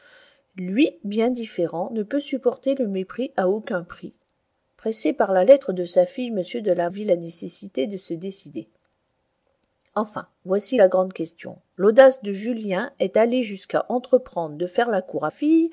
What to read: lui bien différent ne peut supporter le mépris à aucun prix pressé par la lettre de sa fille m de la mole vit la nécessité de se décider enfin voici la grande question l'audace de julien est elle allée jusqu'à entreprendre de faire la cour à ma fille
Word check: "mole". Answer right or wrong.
wrong